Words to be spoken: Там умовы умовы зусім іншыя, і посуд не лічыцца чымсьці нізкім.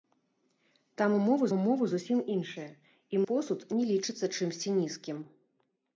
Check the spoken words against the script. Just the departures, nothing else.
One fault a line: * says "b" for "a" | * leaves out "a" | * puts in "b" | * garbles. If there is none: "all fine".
all fine